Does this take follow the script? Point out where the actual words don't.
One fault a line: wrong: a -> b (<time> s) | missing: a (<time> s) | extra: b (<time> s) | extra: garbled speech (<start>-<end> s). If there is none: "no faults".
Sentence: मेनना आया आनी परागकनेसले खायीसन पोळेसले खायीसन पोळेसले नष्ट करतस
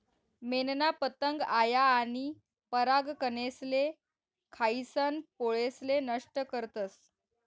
extra: पतंग (1.0 s)
missing: खायीसन पोळेसले (6.0 s)